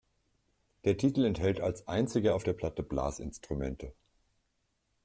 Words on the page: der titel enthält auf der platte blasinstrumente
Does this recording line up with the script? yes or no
no